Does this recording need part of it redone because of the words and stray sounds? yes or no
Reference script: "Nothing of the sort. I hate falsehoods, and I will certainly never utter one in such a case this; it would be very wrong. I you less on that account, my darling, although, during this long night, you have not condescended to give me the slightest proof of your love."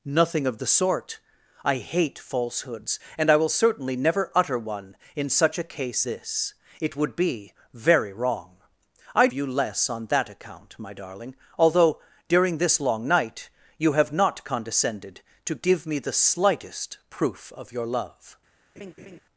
yes